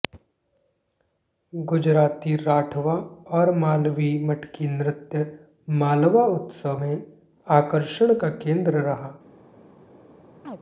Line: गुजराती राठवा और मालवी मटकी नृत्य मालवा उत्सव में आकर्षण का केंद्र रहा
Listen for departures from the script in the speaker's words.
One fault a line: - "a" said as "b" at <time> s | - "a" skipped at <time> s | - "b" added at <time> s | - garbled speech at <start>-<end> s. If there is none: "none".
none